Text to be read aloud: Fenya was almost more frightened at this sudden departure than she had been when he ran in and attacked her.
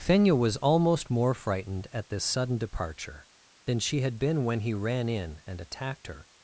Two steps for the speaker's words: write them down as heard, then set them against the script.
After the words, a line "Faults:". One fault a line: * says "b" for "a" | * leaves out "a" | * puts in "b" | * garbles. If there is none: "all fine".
Fenya was almost more frightened at this sudden departure than she had been when he ran in and attacked her.
Faults:
all fine